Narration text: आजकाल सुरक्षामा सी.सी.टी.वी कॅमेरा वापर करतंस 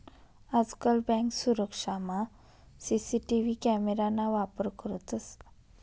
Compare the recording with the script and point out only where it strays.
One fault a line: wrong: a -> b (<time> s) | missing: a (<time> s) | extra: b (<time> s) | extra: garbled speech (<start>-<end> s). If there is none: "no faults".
extra: बँक (1.1 s)
extra: ना (4.1 s)